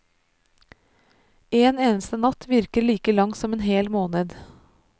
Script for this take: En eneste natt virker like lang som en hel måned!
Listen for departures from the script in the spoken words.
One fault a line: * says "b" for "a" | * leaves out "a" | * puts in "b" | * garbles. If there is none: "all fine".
all fine